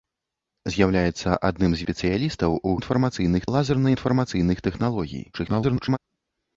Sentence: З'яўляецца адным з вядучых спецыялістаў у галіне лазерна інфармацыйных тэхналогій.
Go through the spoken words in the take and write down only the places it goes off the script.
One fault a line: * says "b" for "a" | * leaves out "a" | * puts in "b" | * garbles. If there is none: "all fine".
* leaves out "вядучых"
* says "інфармацыйных" for "галіне"
* garbles